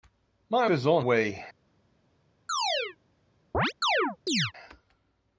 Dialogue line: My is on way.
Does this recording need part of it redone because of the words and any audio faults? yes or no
yes